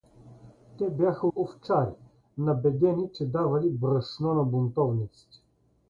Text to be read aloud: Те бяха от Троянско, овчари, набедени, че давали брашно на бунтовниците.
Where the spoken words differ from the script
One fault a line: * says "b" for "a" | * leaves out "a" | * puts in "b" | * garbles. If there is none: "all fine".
* leaves out "от Троянско"